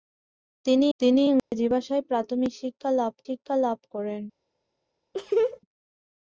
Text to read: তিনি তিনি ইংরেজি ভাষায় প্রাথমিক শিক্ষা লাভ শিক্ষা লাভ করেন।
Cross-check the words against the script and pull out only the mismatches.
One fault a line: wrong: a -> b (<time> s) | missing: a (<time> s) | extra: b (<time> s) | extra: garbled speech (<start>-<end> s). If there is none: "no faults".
no faults